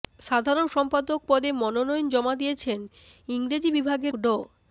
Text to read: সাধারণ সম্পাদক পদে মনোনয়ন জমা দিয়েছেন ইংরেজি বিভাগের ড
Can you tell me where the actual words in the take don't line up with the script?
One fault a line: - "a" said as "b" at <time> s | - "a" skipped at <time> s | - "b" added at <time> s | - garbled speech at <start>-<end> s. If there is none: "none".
none